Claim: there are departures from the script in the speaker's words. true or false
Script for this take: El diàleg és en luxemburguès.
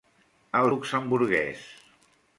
true